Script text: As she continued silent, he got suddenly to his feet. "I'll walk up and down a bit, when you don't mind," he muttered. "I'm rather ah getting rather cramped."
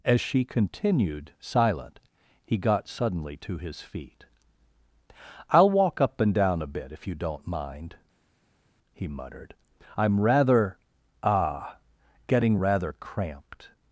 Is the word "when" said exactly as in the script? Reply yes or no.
no